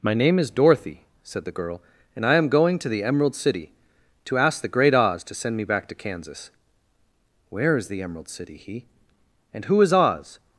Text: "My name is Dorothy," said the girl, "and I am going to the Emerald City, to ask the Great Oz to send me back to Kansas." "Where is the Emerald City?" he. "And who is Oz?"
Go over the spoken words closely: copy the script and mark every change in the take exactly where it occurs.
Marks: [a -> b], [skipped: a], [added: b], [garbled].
"My name is Dorothy," said the girl, "and I am going to the Emerald City, to ask the Great Oz to send me back to Kansas." "Where is the Emerald City?" he. "And who is Oz?"